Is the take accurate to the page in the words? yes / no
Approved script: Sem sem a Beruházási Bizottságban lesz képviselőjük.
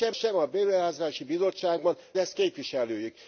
yes